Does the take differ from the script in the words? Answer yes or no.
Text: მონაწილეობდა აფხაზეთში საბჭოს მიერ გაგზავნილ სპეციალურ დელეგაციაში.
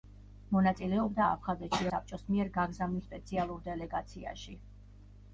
no